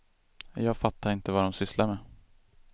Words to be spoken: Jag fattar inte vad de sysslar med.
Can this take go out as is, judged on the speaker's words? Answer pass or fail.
pass